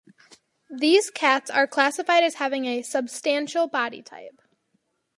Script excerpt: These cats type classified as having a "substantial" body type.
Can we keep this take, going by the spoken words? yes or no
no